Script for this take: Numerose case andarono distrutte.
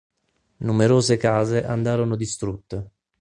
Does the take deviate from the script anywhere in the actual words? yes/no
no